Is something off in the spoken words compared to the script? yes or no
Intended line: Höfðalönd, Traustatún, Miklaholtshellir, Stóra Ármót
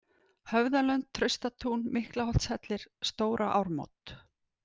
no